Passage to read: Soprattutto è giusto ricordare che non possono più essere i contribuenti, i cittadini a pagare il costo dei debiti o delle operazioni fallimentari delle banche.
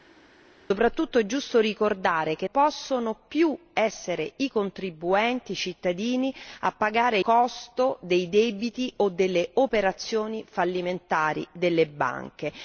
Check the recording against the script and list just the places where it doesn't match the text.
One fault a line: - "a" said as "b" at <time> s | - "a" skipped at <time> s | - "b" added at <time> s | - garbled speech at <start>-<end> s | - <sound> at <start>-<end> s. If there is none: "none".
- "non" skipped at 2.5 s
- "il" skipped at 7.2 s